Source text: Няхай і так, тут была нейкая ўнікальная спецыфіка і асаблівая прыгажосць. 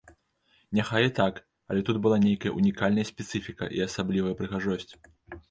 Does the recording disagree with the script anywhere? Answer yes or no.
yes